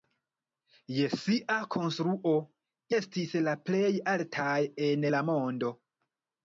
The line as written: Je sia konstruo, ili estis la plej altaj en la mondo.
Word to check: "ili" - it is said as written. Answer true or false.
false